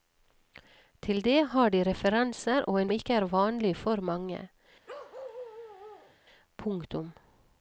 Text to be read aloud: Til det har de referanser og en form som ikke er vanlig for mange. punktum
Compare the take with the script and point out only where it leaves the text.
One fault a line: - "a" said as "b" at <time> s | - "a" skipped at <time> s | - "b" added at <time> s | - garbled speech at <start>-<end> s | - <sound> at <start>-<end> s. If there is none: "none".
- "form som" skipped at 2.9 s
- bark at 4.9-6.2 s